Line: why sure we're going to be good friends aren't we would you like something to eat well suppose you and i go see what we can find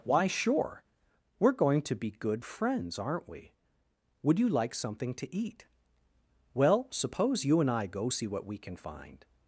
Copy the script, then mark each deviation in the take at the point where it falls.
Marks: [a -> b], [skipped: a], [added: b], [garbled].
why sure we're going to be good friends aren't we would you like something to eat well suppose you and i go see what we can find